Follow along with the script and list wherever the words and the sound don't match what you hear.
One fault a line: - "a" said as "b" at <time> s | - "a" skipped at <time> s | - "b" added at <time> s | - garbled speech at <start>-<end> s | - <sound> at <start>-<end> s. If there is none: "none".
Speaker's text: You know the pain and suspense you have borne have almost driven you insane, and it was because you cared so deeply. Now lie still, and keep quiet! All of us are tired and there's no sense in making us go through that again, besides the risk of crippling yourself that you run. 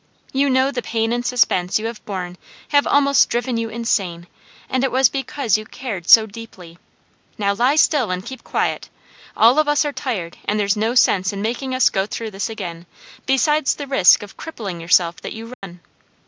- "that" said as "this" at 12.3 s
- dropout at 15.5-15.6 s